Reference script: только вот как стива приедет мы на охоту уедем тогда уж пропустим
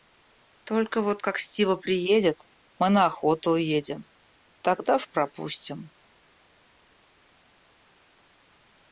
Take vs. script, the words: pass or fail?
pass